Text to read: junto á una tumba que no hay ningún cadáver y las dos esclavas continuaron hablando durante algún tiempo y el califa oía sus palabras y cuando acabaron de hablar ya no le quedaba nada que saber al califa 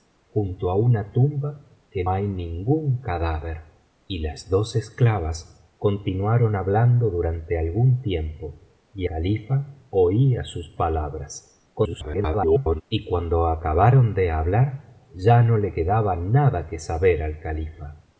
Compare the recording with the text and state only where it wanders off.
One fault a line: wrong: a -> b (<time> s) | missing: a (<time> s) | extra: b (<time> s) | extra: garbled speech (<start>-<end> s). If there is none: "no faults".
missing: no (2.0 s)
missing: el (9.1 s)
extra: garbled speech (11.7-12.8 s)